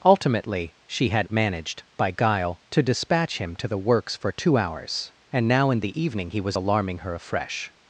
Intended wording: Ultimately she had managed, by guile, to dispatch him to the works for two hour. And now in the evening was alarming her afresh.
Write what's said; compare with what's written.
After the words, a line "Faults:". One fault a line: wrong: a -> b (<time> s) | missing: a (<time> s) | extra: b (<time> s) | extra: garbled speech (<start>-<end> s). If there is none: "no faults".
Ultimately she had managed, by guile, to dispatch him to the works for two hours. And now in the evening he was alarming her afresh.
Faults:
wrong: hour -> hours (4.6 s)
extra: he (6.3 s)